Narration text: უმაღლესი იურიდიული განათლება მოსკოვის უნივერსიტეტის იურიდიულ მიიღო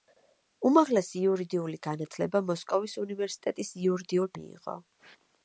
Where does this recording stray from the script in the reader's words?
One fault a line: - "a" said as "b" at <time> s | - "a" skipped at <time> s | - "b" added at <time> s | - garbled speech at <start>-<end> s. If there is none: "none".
none